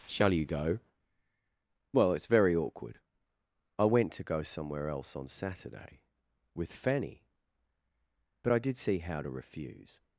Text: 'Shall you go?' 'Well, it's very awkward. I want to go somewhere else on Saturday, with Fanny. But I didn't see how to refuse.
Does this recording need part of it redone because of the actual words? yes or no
yes